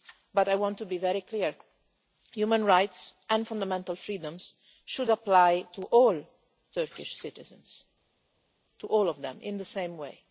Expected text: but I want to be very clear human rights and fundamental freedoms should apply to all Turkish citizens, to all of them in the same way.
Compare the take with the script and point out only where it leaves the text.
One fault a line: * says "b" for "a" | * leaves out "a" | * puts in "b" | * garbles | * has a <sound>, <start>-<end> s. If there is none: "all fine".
all fine